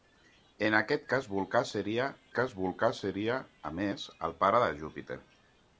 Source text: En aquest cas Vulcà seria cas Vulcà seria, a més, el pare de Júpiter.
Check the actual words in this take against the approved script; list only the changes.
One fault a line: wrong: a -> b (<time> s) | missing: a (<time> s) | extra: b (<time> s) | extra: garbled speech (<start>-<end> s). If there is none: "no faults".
no faults